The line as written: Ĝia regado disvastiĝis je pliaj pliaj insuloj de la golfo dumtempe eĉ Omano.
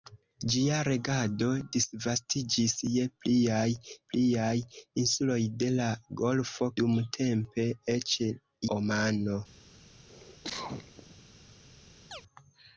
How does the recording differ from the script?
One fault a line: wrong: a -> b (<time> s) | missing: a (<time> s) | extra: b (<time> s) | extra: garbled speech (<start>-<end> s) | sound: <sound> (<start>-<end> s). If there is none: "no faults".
sound: cough (10.1-11.2 s)
sound: chirp (12.1-12.2 s)